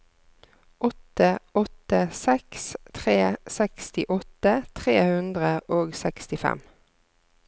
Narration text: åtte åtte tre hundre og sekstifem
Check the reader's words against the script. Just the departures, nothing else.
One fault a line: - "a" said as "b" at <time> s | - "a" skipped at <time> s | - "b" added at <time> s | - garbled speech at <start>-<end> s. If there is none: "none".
- "seks tre sekstiåtte" added at 2.2 s